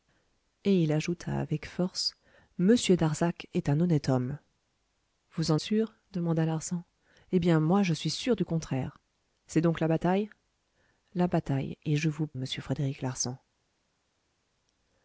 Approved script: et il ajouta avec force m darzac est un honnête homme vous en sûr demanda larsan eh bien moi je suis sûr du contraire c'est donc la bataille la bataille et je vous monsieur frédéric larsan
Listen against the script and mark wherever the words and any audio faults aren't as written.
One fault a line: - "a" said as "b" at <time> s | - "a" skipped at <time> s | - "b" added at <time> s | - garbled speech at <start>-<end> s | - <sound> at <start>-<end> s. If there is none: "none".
none